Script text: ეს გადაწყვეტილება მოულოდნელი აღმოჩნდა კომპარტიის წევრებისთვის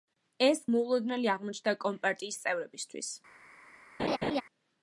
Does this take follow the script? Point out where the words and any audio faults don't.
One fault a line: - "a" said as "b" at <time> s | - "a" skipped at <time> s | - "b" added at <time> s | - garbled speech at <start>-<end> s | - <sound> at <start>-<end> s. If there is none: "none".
- "გადაწყვეტილება" skipped at 0.6 s
- laugh at 4.0-4.4 s